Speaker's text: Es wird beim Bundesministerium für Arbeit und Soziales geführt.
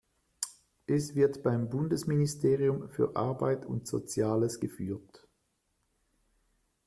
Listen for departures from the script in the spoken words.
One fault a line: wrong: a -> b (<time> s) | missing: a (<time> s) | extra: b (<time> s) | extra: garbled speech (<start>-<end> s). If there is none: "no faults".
no faults